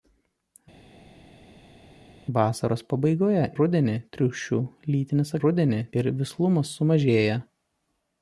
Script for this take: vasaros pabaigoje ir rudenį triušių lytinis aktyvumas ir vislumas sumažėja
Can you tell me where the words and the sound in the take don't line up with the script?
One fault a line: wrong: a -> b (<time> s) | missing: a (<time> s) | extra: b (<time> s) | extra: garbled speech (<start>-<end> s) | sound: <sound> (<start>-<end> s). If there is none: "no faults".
missing: ir (3.4 s)
wrong: aktyvumas -> rudenį (5.4 s)